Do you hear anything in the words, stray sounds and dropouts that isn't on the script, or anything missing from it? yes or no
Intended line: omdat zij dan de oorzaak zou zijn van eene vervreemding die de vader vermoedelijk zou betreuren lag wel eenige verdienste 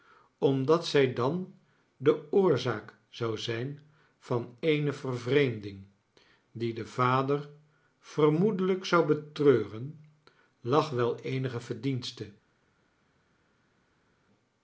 no